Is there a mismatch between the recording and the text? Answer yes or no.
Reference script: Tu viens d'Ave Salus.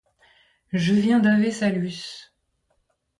yes